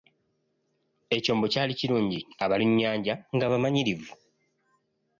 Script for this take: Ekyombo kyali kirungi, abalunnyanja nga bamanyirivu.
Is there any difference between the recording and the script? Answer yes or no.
no